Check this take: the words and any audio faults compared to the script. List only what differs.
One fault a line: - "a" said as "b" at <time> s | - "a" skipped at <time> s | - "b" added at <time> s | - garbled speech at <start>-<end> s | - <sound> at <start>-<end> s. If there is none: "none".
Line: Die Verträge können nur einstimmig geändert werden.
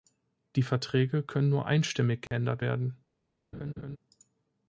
- dropout at 2.3-2.3 s
- laugh at 3.5-4.0 s